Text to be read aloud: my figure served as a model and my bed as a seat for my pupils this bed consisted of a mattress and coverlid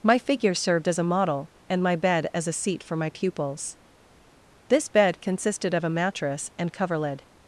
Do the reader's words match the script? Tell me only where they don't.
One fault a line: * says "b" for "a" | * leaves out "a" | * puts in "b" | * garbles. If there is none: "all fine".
all fine